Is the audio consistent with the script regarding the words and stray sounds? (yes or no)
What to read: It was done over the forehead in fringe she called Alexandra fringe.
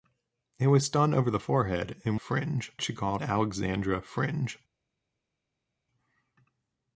yes